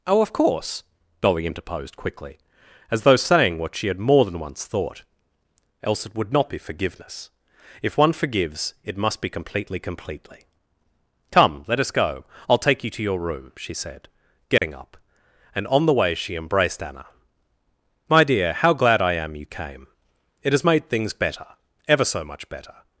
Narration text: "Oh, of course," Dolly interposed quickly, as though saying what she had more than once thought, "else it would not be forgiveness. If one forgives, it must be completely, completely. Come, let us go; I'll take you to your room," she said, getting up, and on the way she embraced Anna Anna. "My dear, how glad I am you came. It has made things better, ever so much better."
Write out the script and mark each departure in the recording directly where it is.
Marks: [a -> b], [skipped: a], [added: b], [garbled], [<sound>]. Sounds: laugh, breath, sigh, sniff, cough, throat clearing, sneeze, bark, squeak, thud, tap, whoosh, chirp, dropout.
"Oh, of course," Dolly interposed quickly, as though saying what she had more than once thought, "else it would not be forgiveness. If one forgives, it must be completely, completely. Come, let us go; I'll take you to your room," she said, getting [dropout] up, and on the way she embraced Anna [skipped: Anna.] "My dear, how glad I am you came. It has made things better, ever so much better."